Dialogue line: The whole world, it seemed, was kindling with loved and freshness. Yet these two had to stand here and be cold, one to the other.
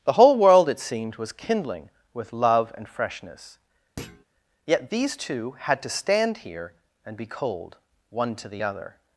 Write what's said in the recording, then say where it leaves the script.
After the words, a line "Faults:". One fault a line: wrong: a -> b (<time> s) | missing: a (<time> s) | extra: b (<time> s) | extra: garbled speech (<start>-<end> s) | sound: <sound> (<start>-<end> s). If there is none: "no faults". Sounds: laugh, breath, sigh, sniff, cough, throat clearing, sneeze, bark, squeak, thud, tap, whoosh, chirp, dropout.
The whole world, it seemed, was kindling with love and freshness. Yet these two had to stand here and be cold, one to the other.
Faults:
wrong: loved -> love (2.3 s)
sound: thud (4.0-4.2 s)